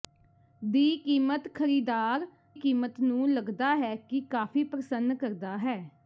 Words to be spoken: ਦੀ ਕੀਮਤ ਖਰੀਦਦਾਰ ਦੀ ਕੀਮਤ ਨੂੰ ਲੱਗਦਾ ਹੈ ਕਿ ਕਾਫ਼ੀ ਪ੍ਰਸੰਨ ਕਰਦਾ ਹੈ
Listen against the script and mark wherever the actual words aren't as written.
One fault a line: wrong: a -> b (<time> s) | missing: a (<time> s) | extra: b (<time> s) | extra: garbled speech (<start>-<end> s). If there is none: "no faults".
missing: ਦੀ (2.2 s)